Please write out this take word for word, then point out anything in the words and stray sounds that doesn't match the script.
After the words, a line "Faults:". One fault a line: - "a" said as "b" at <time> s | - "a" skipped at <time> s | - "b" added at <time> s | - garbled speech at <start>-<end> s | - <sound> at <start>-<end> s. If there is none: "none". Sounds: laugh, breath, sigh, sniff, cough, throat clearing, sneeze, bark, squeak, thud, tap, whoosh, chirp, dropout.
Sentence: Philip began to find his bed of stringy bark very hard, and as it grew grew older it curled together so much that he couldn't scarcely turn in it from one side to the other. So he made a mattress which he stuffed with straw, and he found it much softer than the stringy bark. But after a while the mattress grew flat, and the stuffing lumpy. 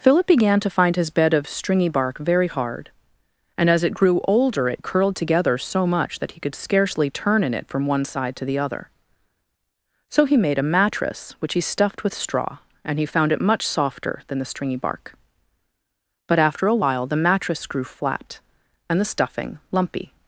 Philip began to find his bed of stringy bark very hard, and as it grew older it curled together so much that he could scarcely turn in it from one side to the other. So he made a mattress which he stuffed with straw, and he found it much softer than the stringy bark. But after a while the mattress grew flat, and the stuffing lumpy.
Faults:
- "grew" skipped at 4.2 s
- "couldn't" said as "could" at 6.4 s